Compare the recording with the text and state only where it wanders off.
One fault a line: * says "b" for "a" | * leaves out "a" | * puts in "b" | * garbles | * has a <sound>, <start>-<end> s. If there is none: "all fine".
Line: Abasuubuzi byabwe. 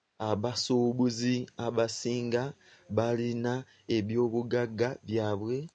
* puts in "abasinga balina ebyobugagga"